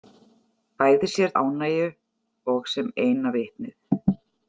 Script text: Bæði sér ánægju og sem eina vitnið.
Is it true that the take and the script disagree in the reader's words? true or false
false